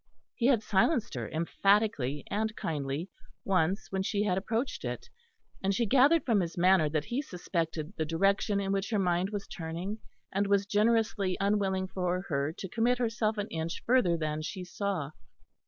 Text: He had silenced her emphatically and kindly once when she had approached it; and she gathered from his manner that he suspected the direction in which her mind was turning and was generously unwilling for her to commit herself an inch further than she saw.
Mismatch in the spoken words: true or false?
false